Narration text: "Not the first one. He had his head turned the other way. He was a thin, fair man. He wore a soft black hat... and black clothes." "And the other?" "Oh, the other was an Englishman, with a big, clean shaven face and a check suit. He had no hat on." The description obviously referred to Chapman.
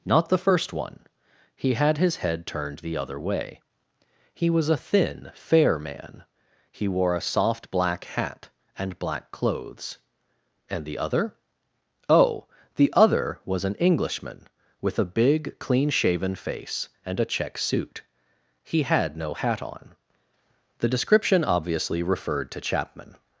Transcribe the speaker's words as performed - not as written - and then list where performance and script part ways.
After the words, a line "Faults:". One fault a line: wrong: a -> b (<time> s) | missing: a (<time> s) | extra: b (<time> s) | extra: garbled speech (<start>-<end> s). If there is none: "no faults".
"Not the first one. He had his head turned the other way. He was a thin, fair man. He wore a soft black hat... and black clothes." "And the other?" "Oh, the other was an Englishman, with a big, clean shaven face and a check suit. He had no hat on." The description obviously referred to Chapman.
Faults:
no faults